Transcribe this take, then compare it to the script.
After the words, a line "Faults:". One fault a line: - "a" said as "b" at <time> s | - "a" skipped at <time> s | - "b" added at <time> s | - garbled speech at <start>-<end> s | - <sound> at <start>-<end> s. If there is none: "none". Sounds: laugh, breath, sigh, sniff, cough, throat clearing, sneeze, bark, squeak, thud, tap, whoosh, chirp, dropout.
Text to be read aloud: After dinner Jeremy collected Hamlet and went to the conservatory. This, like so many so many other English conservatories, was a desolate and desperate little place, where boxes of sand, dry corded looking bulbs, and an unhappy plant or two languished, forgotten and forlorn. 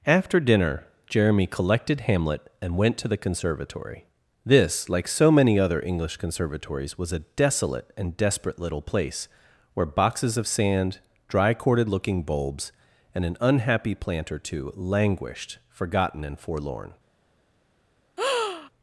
After dinner Jeremy collected Hamlet and went to the conservatory. This, like so many other English conservatories, was a desolate and desperate little place, where boxes of sand, dry corded looking bulbs, and an unhappy plant or two languished, forgotten and forlorn.
Faults:
- "so many" skipped at 5.6 s
- breath at 18.2-18.7 s